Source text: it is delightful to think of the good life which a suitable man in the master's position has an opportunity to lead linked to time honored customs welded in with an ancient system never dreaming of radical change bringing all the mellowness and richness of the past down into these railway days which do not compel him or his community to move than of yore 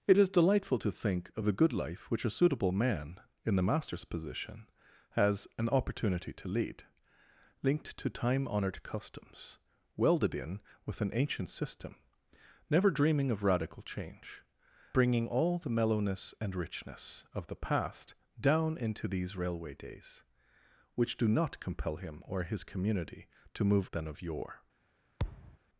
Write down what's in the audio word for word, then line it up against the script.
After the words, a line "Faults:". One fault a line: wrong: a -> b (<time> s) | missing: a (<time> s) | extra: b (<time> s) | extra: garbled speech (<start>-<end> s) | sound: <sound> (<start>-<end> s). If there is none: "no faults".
it is delightful to think of the good life which a suitable man in the master's position has an opportunity to lead linked to time honored customs welded in with an ancient system never dreaming of radical change bringing all the mellowness and richness of the past down into these railway days which do not compel him or his community to move than of yore
Faults:
sound: thud (25.2-25.6 s)